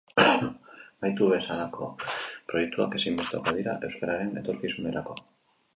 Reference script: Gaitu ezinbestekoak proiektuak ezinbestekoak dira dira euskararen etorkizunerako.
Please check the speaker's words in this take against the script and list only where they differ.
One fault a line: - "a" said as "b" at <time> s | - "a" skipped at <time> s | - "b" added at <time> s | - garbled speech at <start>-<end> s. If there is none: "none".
- "ezinbestekoak" said as "bezalako" at 1.3 s
- "dira" skipped at 3.8 s